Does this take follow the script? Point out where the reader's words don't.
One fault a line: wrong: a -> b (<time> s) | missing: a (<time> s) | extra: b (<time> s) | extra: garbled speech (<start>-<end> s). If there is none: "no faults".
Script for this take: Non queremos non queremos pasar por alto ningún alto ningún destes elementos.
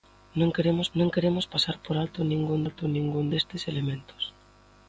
no faults